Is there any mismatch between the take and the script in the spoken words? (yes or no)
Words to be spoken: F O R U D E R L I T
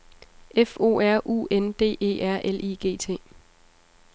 yes